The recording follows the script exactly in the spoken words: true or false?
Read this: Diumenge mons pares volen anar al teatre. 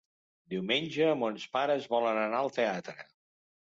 true